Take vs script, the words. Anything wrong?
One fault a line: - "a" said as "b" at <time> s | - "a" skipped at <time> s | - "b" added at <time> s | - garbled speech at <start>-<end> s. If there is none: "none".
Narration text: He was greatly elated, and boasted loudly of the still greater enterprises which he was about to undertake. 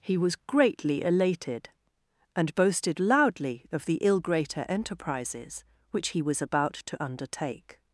- "still" said as "ill" at 4.0 s